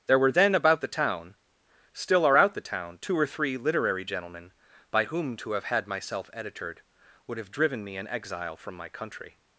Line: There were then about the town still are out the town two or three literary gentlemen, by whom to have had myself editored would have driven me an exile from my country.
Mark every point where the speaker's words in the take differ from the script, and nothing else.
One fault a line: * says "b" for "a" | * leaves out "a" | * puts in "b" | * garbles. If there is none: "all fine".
all fine